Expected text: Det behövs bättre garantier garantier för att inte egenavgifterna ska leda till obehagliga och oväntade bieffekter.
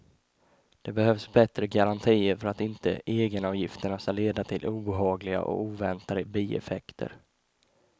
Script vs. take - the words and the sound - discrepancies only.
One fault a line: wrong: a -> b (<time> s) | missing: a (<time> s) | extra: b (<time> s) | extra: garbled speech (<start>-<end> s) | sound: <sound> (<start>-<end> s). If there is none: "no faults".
missing: garantier (2.4 s)